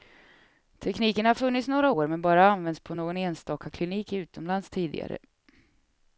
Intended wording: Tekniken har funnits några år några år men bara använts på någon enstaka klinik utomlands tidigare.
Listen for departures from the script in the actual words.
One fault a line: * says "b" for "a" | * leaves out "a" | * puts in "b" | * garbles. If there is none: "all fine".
* leaves out "några år"